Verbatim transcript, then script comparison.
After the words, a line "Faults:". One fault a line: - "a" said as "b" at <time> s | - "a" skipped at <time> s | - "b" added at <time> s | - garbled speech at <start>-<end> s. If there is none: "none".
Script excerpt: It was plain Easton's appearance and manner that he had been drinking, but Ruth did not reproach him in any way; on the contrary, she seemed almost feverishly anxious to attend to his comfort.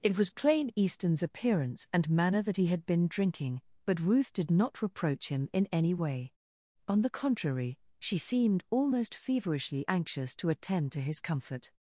It was plain Easton's appearance and manner that he had been drinking, but Ruth did not reproach him in any way; on the contrary, she seemed almost feverishly anxious to attend to his comfort.
Faults:
none